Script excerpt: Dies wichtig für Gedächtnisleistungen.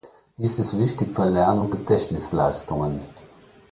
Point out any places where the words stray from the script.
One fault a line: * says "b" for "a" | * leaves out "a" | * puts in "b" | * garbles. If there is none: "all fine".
* puts in "ist"
* puts in "Lern und"